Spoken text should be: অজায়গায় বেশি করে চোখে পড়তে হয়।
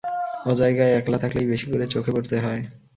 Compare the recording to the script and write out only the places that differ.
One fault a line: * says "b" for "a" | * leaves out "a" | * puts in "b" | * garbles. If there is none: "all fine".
* puts in "একলা থাকলেই"